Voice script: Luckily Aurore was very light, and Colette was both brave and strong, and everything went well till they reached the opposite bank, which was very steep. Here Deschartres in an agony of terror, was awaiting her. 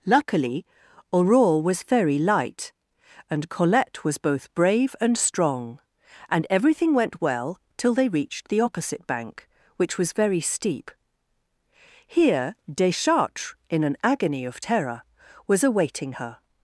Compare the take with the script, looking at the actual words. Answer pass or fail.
pass